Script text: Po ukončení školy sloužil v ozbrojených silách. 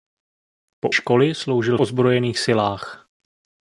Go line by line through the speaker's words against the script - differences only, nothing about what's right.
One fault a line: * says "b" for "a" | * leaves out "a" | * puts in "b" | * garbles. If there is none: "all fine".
* leaves out "ukončení"
* leaves out "v"